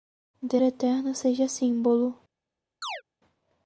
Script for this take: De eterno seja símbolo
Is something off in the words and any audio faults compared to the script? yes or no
yes